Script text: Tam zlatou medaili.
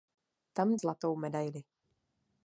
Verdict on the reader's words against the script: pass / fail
pass